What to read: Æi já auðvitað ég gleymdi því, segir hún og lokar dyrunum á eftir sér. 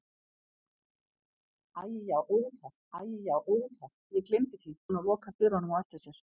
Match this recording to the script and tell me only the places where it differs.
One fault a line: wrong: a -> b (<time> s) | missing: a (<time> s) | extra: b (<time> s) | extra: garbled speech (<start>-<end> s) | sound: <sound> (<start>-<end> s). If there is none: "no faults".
extra: æi já auðvitað (3.0 s)
missing: segir (4.8 s)